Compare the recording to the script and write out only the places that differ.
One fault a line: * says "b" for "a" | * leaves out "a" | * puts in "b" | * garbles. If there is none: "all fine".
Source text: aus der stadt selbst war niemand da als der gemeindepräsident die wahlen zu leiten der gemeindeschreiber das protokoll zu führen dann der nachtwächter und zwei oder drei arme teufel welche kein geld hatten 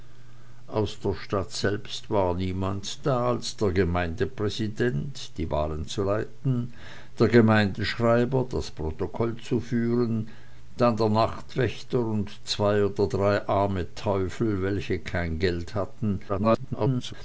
* garbles